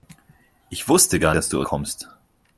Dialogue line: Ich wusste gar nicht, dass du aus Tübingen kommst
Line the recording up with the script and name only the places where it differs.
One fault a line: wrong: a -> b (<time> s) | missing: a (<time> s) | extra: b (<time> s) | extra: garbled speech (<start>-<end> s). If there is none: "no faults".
missing: nicht (1.4 s)
missing: aus Tübingen (1.6 s)